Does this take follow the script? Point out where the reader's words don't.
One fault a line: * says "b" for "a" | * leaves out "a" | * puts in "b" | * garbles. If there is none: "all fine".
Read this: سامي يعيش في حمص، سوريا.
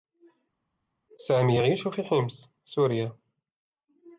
all fine